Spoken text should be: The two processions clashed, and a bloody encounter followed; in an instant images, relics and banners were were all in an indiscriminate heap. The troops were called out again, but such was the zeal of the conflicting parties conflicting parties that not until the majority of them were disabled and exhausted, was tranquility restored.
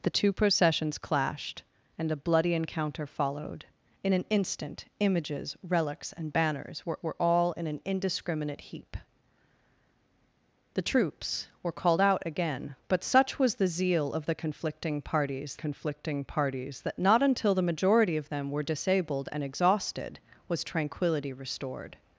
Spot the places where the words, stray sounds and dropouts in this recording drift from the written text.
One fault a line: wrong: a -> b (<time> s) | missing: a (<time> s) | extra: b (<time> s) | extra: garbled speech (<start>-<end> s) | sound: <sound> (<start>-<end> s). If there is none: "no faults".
no faults